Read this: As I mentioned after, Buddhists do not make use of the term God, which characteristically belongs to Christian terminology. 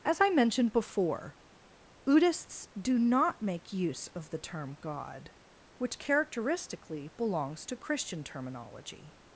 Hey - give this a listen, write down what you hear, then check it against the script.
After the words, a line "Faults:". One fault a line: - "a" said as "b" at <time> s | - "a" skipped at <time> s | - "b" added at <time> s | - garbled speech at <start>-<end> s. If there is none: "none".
As I mentioned before, Buddhists do not make use of the term God, which characteristically belongs to Christian terminology.
Faults:
- "after" said as "before" at 0.7 s